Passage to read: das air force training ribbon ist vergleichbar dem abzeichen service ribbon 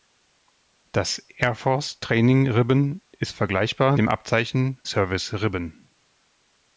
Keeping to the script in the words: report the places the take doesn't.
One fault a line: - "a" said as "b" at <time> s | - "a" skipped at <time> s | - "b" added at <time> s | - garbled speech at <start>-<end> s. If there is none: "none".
none